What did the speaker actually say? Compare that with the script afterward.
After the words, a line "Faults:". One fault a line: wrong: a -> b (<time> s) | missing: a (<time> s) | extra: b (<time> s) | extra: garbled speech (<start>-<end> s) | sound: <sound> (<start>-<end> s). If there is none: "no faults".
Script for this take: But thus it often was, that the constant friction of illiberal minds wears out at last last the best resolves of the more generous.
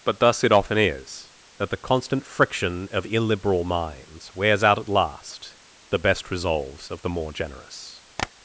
But thus it often is, that the constant friction of illiberal minds wears out at last the best resolves of the more generous.
Faults:
wrong: was -> is (0.8 s)
missing: last (5.6 s)
sound: tap (8.2-8.3 s)